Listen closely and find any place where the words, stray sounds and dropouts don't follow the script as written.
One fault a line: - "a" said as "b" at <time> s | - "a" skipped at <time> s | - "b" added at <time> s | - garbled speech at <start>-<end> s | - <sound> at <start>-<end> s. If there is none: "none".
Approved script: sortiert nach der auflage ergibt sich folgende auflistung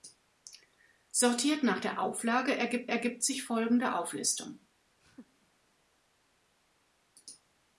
- "ergibt" added at 2.9 s
- laugh at 5.0-5.5 s